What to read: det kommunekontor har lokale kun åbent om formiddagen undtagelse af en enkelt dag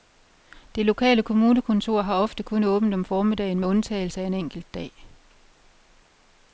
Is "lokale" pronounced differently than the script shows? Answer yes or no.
yes